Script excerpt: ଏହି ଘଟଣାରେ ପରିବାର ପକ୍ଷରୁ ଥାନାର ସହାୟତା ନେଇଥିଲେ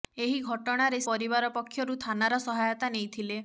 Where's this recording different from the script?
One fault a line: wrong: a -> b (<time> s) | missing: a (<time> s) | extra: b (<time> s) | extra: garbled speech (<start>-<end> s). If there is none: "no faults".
no faults